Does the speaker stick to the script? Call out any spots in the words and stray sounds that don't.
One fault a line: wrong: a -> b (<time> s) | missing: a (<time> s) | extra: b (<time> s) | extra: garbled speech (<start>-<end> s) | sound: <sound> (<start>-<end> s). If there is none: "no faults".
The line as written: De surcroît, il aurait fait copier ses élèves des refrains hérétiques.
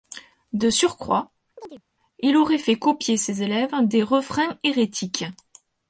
sound: chirp (1.6-1.8 s)